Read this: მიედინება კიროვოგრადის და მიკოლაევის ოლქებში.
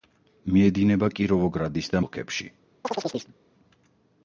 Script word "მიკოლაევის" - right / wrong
wrong